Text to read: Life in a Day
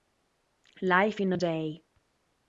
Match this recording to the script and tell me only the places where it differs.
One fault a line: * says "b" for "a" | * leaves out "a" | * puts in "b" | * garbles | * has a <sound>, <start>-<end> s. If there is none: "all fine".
all fine